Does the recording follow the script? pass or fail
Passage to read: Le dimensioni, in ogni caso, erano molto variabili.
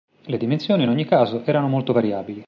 pass